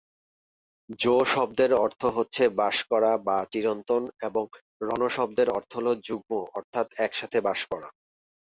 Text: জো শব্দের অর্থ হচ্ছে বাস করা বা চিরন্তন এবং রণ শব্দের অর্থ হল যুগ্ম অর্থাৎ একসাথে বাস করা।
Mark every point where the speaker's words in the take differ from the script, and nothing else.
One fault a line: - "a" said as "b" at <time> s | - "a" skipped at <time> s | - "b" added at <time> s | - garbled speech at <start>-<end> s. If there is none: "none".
none